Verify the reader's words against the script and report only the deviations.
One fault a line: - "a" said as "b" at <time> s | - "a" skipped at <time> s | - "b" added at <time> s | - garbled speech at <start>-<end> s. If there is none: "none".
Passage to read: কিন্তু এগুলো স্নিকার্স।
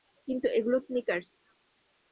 none